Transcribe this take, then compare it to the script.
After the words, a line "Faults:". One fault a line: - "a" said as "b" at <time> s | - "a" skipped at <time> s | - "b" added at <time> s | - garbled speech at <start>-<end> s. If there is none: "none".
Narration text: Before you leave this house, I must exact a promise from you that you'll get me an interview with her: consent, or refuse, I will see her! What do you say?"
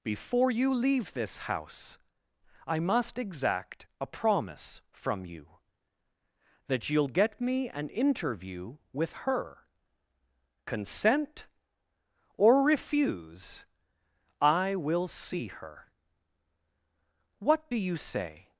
Before you leave this house, I must exact a promise from you that you'll get me an interview with her: consent, or refuse, I will see her! What do you say?"
Faults:
none